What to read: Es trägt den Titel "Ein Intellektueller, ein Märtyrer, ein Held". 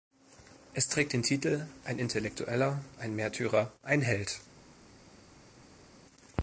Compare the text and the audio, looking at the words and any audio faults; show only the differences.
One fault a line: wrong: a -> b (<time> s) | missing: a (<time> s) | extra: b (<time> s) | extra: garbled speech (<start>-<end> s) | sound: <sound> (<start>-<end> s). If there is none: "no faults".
no faults